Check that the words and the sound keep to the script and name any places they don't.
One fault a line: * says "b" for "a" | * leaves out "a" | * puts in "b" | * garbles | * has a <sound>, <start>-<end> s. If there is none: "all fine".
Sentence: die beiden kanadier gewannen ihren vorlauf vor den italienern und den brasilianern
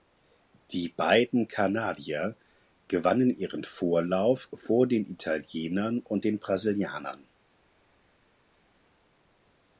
all fine